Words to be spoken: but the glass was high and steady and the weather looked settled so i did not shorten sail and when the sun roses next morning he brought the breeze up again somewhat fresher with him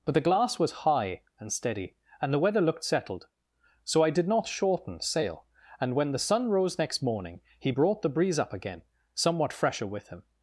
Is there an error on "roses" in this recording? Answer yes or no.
yes